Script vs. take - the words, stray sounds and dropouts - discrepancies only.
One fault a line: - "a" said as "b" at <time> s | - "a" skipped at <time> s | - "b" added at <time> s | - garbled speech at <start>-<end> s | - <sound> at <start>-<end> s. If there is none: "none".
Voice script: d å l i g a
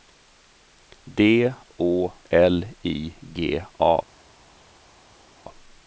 none